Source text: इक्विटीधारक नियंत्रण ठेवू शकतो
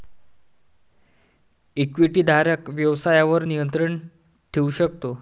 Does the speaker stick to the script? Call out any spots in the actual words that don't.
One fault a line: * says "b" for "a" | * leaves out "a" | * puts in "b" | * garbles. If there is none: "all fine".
* puts in "व्यवसायावर"